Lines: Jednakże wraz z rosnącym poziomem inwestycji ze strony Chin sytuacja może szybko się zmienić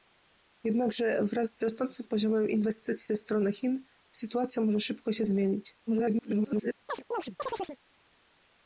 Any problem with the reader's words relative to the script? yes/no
yes